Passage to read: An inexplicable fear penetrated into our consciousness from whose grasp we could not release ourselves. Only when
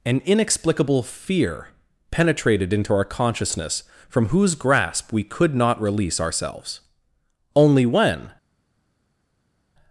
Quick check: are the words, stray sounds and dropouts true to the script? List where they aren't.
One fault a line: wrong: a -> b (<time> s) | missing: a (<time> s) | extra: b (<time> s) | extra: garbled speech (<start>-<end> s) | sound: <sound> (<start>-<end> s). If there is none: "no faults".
no faults